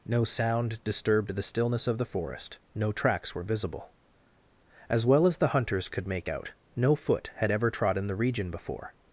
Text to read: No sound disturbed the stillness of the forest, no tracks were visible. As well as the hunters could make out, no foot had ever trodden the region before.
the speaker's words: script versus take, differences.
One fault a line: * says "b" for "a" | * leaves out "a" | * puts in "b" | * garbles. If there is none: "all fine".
all fine